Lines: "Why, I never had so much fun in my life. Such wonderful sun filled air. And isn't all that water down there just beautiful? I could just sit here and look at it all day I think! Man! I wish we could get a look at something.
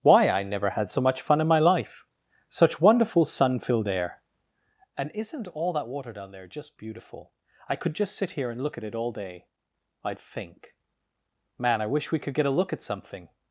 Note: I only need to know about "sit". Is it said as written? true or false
true